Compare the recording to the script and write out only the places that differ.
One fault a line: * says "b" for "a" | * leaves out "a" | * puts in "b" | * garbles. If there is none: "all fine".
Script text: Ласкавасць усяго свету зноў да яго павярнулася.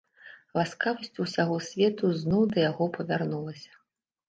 all fine